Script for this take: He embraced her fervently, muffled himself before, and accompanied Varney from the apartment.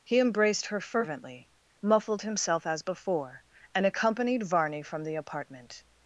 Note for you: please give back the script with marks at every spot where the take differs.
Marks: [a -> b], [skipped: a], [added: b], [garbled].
He embraced her fervently, muffled himself [added: as] before, and accompanied Varney from the apartment.